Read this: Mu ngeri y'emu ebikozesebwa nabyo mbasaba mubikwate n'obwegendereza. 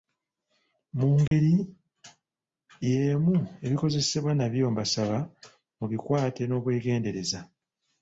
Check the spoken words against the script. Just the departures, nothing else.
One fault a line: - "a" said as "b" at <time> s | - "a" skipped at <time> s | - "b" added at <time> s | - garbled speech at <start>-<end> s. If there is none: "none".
none